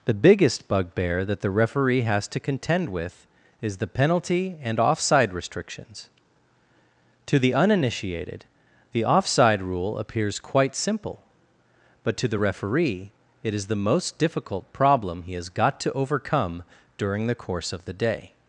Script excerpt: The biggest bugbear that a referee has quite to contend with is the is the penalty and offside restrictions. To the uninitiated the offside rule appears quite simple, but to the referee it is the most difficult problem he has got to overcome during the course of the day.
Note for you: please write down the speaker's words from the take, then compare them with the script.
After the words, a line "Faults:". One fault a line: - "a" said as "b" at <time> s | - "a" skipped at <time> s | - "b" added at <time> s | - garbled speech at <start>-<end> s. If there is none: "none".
The biggest bugbear that the referee has to contend with is the penalty and offside restrictions. To the uninitiated the offside rule appears quite simple, but to the referee it is the most difficult problem he has got to overcome during the course of the day.
Faults:
- "a" said as "the" at 1.4 s
- "quite" skipped at 2.3 s
- "is the" skipped at 3.9 s